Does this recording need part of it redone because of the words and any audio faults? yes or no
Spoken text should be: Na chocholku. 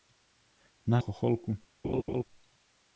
yes